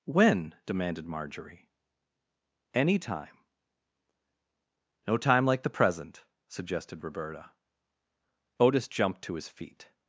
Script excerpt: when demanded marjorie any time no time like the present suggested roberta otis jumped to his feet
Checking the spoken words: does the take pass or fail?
pass